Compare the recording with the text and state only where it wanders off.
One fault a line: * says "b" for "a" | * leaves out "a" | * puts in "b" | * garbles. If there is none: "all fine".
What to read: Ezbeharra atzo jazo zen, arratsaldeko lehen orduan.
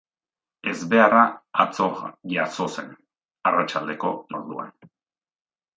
* leaves out "lehen"